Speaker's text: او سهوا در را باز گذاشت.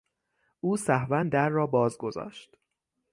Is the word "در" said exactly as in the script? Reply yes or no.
yes